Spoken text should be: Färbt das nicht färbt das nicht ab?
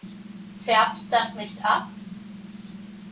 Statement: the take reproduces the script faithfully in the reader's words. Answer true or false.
false